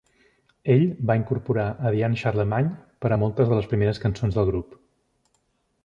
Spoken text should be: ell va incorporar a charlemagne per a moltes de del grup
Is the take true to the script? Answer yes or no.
no